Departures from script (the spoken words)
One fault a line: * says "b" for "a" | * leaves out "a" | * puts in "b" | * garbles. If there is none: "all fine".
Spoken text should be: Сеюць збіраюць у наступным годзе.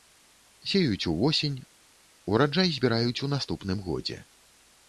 * puts in "увосень ураджай"